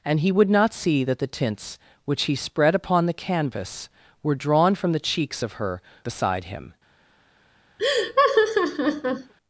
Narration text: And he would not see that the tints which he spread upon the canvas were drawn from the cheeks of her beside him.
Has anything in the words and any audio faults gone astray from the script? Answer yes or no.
yes